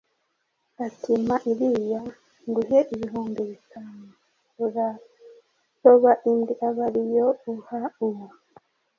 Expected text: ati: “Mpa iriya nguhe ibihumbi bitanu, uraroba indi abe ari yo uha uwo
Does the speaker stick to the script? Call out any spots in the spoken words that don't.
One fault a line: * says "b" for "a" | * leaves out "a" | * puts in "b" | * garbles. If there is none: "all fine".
all fine